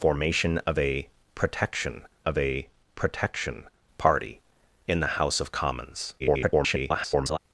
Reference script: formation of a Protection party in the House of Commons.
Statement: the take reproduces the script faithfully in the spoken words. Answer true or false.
false